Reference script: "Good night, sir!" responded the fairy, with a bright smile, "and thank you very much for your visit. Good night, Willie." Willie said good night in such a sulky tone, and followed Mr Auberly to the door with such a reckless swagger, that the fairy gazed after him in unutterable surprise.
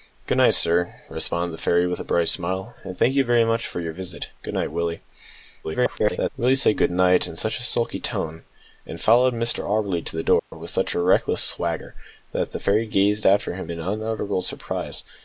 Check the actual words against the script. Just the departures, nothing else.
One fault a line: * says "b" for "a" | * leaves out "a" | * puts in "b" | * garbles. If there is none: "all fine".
* garbles